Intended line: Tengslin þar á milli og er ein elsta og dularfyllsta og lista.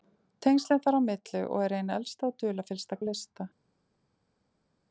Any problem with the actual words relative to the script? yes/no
no